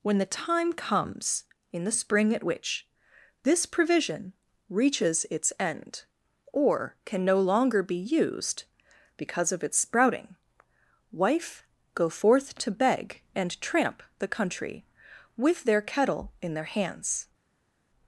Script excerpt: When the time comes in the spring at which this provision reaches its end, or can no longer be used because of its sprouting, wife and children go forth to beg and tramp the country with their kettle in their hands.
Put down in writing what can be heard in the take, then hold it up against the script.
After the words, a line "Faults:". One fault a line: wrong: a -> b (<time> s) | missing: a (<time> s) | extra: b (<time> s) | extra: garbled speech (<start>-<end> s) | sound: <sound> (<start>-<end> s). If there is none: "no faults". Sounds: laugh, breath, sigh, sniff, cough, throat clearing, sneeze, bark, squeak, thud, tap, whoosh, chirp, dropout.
When the time comes in the spring at which this provision reaches its end, or can no longer be used because of its sprouting, wife go forth to beg and tramp the country with their kettle in their hands.
Faults:
missing: and children (11.6 s)